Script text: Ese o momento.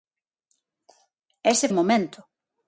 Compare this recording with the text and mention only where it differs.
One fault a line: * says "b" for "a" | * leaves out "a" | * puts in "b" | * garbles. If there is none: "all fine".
all fine